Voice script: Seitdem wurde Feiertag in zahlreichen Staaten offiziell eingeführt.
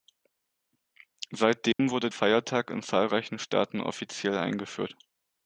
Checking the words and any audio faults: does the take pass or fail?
fail